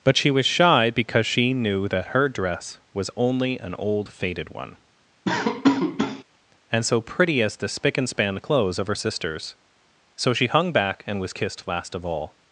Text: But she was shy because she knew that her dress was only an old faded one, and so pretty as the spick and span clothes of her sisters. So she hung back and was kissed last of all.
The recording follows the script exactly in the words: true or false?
true